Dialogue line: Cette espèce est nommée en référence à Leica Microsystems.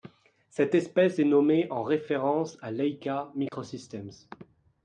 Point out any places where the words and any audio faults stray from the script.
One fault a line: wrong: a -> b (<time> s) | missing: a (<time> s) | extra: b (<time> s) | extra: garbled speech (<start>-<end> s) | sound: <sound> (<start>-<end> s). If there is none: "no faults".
sound: dropout (3.5-3.5 s)